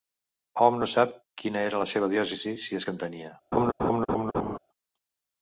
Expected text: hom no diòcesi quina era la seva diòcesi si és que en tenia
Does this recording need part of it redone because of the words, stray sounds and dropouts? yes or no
yes